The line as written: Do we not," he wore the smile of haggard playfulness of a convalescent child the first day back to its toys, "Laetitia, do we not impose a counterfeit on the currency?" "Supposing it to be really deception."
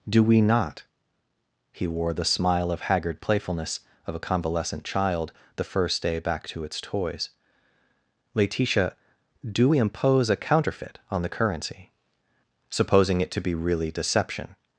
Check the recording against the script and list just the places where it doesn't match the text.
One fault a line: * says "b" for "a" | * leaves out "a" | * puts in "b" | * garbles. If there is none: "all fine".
* leaves out "not"